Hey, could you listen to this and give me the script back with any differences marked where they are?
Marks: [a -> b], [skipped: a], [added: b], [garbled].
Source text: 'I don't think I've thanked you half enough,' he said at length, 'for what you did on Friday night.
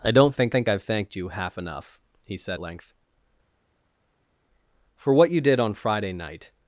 'I don't think [added: think] I've thanked you half enough,' he said [skipped: at] length, 'for what you did on Friday night.